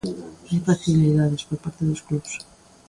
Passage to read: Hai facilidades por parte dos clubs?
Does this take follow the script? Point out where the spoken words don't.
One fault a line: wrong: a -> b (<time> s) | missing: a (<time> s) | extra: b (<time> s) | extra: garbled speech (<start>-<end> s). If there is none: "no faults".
no faults